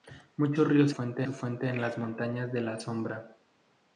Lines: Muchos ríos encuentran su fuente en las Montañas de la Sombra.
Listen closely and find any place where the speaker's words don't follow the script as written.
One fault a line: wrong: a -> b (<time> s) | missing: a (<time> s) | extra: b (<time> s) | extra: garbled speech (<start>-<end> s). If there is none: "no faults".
wrong: encuentran -> fuente (0.9 s)